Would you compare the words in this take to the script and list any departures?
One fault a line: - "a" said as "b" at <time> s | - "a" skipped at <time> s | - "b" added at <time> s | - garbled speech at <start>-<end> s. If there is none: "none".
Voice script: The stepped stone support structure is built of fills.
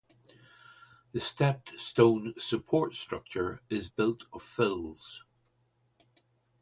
none